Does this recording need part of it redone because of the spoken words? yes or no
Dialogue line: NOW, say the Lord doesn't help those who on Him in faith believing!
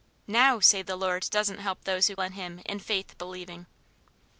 no